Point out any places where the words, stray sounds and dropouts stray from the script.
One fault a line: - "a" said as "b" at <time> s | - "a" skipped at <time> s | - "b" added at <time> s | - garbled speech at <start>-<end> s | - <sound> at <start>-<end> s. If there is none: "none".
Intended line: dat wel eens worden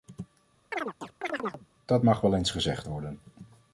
- chirp at 0.7-1.7 s
- "mag" added at 2.0 s
- "gezegd" added at 2.5 s